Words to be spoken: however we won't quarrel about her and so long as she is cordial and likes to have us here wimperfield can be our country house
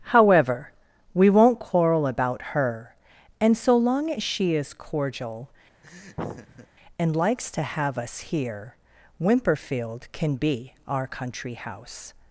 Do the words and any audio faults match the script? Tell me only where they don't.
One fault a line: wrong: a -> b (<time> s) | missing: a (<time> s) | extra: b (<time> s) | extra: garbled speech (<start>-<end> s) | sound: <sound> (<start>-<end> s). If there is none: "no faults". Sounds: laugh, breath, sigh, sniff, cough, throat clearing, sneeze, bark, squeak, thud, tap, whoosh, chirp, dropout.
sound: laugh (5.8-6.7 s)